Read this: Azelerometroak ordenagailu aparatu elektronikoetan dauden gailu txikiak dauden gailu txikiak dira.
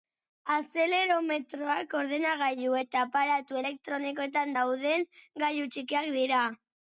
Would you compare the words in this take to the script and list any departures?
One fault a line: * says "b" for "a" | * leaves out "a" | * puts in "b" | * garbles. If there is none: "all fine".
* puts in "eta"
* leaves out "dauden gailu txikiak"